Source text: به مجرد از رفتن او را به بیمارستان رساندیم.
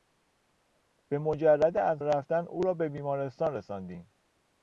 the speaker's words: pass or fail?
pass